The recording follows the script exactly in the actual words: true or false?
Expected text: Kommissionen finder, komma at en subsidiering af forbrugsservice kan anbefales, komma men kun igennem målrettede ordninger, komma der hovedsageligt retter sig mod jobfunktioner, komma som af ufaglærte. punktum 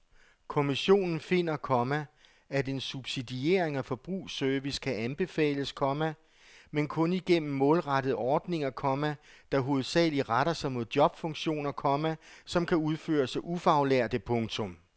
false